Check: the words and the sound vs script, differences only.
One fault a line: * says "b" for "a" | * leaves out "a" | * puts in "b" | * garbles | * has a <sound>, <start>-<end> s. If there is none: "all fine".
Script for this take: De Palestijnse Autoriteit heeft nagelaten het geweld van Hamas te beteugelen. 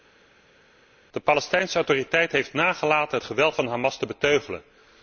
all fine